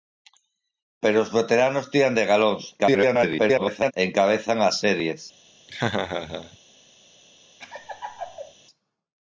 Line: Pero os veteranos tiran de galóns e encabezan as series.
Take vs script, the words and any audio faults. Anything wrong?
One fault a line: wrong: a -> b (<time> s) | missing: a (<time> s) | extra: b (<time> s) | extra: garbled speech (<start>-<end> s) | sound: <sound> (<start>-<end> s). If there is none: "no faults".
extra: garbled speech (2.8-3.9 s)
sound: laugh (5.7-6.6 s)
sound: laugh (7.6-8.5 s)